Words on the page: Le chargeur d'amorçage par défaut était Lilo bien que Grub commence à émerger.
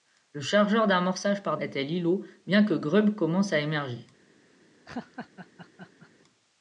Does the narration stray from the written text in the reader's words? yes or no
yes